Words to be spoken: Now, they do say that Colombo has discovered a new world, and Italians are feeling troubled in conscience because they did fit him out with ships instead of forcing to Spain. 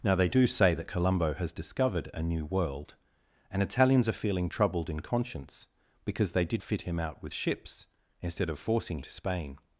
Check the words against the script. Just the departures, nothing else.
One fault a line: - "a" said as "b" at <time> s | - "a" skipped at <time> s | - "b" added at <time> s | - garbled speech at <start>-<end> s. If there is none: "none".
none